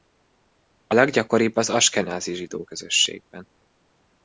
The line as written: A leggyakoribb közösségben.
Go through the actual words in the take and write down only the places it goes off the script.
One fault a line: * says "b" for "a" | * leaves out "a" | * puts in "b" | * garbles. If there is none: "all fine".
* puts in "az askenázi zsidó"